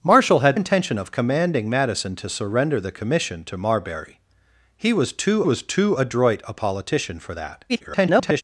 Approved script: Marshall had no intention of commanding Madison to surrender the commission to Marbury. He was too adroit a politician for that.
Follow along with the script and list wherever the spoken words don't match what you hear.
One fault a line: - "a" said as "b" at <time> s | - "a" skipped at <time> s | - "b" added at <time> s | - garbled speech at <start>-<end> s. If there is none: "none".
- "no" skipped at 0.6 s
- "was too" added at 5.4 s
- garbled speech at 7.7-8.4 s